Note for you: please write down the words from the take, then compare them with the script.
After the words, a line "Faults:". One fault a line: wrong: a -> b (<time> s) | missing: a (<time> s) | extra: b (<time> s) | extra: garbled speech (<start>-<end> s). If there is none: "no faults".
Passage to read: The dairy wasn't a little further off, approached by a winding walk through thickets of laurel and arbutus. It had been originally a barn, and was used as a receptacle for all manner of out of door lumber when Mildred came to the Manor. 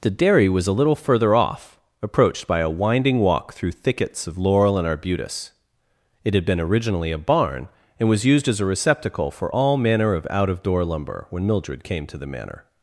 The dairy was a little further off, approached by a winding walk through thickets of laurel and arbutus. It had been originally a barn, and was used as a receptacle for all manner of out of door lumber when Mildred came to the Manor.
Faults:
wrong: wasn't -> was (0.5 s)